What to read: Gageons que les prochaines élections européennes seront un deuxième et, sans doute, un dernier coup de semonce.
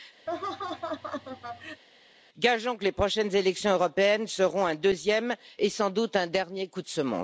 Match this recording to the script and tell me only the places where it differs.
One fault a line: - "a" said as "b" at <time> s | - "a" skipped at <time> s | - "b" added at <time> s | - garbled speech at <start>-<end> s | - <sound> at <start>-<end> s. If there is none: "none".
- laugh at 0.3-1.8 s